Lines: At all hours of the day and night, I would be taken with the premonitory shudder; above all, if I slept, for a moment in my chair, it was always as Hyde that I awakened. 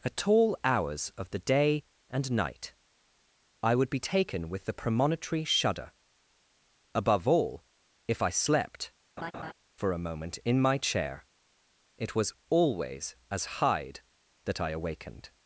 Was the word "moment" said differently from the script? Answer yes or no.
no